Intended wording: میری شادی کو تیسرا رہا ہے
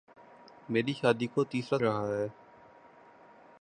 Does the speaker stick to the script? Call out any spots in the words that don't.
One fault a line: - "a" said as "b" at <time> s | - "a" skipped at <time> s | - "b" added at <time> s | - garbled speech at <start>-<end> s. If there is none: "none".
none